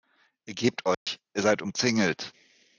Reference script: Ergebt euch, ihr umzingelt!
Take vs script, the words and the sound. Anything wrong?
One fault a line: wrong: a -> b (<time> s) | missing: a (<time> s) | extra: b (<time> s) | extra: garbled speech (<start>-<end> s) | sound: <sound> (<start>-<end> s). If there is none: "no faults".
sound: dropout (0.9-1.1 s)
extra: seid (1.4 s)